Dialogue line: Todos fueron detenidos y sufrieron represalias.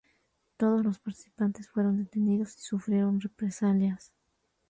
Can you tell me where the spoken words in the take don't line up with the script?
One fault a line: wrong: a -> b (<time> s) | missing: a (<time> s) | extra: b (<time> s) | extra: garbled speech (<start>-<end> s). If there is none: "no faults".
extra: los participantes (0.8 s)